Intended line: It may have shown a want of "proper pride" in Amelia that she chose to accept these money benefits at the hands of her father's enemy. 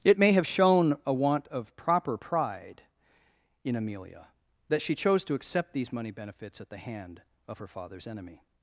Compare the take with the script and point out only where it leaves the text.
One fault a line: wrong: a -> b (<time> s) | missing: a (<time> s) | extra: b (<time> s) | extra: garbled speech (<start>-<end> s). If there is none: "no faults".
wrong: hands -> hand (6.8 s)